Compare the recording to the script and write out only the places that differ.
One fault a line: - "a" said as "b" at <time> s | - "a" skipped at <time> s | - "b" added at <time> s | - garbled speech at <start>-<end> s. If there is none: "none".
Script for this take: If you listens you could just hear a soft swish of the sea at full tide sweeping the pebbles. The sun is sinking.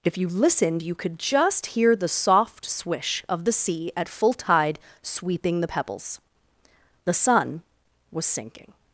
- "listens" said as "listened" at 0.3 s
- "a" said as "the" at 1.9 s
- "is" said as "was" at 8.1 s